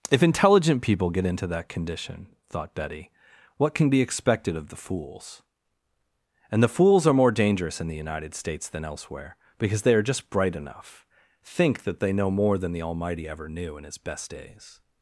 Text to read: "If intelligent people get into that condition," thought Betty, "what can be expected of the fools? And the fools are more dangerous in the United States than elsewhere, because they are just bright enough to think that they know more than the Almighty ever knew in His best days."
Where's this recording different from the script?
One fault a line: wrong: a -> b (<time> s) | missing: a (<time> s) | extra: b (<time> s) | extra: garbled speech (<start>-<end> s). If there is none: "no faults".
missing: to (11.1 s)